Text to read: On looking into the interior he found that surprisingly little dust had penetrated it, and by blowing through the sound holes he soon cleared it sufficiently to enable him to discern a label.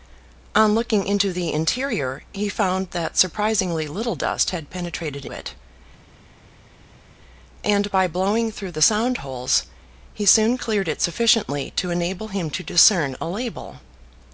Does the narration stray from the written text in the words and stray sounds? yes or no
no